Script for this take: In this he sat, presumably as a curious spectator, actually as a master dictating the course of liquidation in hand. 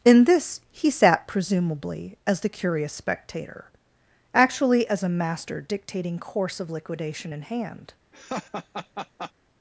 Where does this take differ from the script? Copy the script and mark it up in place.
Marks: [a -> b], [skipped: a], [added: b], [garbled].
In this he sat, presumably as [a -> the] curious spectator, actually as a master dictating [skipped: the] course of liquidation in hand.